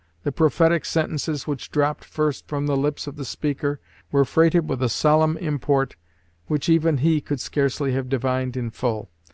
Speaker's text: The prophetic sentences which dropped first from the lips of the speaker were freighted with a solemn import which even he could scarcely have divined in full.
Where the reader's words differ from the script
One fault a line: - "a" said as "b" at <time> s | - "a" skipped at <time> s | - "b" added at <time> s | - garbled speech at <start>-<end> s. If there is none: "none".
none